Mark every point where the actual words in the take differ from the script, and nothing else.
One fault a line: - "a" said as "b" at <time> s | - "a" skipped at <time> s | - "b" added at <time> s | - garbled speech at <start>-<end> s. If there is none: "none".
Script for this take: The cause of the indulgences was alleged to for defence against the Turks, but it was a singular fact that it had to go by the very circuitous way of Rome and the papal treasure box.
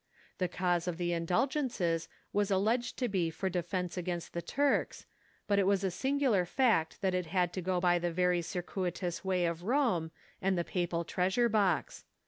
- "be" added at 3.1 s